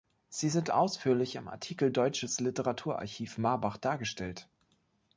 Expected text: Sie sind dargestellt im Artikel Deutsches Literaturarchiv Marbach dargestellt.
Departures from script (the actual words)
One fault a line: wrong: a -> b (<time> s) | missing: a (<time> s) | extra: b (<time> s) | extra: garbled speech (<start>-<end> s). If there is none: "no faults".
wrong: dargestellt -> ausführlich (0.7 s)